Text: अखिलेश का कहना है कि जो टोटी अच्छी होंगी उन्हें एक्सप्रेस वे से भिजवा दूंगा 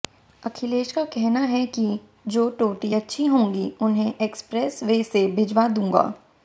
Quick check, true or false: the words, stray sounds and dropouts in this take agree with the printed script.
true